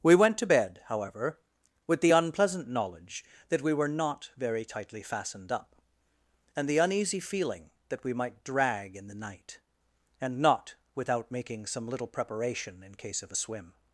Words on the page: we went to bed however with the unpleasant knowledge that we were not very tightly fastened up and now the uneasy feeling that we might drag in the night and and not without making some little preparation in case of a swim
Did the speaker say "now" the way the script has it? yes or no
no